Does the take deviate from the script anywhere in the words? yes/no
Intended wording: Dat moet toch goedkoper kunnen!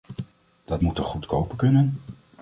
no